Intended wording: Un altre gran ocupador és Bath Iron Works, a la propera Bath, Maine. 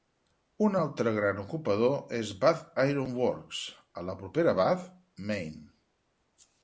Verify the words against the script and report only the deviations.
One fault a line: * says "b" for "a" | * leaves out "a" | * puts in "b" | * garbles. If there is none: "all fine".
all fine